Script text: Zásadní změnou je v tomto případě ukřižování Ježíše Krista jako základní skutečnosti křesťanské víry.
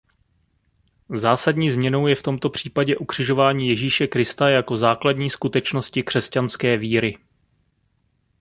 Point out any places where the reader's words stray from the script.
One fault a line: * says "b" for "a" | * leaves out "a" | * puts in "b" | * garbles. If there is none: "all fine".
all fine